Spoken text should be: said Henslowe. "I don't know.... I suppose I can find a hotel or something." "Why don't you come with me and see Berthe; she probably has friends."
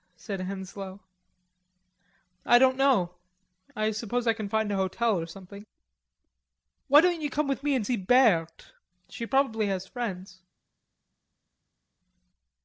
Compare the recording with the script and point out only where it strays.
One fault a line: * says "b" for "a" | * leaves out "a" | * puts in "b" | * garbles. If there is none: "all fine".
all fine